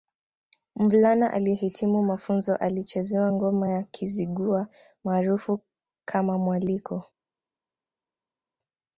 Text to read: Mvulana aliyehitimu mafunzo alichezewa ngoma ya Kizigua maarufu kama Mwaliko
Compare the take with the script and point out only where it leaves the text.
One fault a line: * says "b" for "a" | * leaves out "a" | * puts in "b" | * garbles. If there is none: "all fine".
all fine